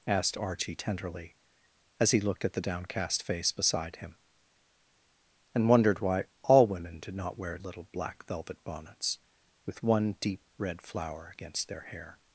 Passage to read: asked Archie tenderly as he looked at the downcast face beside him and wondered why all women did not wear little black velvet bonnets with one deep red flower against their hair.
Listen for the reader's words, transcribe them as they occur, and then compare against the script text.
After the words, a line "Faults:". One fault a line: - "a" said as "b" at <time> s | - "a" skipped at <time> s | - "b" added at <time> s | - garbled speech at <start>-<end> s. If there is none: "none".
asked Archie tenderly as he looked at the downcast face beside him and wondered why all women did not wear little black velvet bonnets with one deep red flower against their hair.
Faults:
none